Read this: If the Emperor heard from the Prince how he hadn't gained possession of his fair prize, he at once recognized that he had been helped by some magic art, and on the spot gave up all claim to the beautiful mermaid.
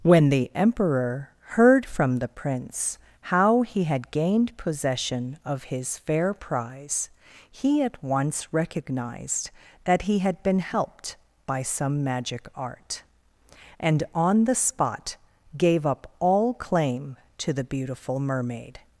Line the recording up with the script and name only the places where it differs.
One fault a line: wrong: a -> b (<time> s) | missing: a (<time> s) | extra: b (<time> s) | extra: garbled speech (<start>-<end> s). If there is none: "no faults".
wrong: If -> When (0.0 s)
wrong: hadn't -> had (3.8 s)